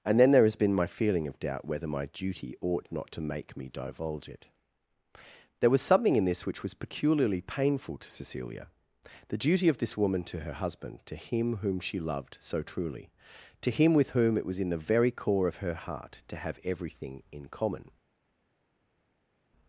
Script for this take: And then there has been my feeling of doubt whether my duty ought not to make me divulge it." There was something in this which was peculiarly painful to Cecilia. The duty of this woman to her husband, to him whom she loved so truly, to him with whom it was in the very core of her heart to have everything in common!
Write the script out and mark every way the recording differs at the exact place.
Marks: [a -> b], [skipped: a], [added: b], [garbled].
And then there has been my feeling of doubt whether my duty ought not to make me divulge it." There was something in this which was peculiarly painful to Cecilia. The duty of this woman to her husband, to him whom she loved so truly, to him with whom it was in the very core of her heart to have everything in common!